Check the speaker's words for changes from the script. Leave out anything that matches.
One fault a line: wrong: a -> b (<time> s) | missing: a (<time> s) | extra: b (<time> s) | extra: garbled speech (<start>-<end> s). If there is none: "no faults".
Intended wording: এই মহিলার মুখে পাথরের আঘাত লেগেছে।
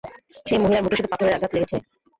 wrong: এই -> সেই (0.5 s)
extra: শুধু (1.0 s)